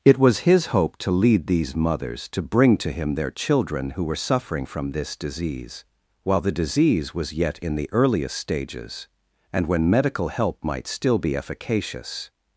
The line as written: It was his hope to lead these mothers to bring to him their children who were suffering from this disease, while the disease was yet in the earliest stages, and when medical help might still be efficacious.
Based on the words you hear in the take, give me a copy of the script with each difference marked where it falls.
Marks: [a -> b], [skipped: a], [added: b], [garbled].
It was his hope to lead these mothers to bring to him their children who were suffering from this disease, while the disease was yet in the earliest stages, and when medical help might still be efficacious.